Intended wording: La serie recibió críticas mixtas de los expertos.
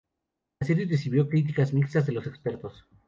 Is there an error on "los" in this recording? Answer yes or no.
no